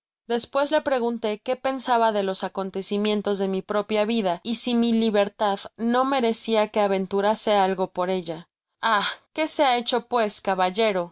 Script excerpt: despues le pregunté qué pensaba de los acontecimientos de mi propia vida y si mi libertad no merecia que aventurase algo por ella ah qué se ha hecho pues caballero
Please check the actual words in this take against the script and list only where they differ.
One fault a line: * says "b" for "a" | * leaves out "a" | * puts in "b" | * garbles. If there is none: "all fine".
all fine